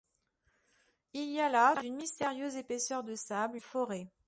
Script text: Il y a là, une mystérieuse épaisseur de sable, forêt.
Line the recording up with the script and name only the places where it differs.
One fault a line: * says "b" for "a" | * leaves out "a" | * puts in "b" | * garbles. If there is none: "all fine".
all fine